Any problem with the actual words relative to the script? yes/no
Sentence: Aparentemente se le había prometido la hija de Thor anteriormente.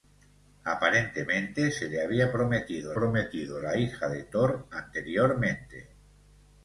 yes